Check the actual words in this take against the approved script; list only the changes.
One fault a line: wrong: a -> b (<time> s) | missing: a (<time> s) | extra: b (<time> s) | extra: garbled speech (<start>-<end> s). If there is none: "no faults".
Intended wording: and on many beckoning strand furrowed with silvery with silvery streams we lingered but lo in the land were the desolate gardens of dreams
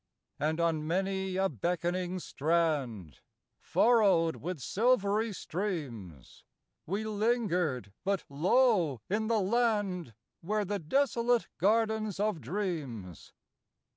extra: a (1.4 s)
missing: with silvery (5.3 s)